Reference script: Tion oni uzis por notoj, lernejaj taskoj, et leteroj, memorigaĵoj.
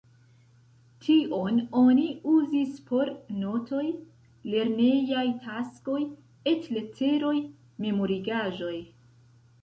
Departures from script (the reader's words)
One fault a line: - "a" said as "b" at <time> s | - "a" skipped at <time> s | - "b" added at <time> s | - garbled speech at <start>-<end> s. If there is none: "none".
none